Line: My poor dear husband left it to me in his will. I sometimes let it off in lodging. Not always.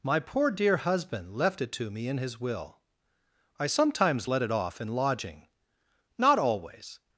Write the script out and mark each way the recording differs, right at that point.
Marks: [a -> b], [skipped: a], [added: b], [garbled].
My poor dear husband left it to me in his will. I sometimes let it off in lodging. Not always.